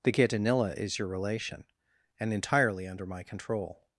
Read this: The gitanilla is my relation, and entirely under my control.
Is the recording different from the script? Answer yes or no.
yes